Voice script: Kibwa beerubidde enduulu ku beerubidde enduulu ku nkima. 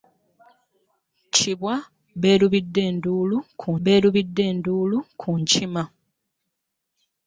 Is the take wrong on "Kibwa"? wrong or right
right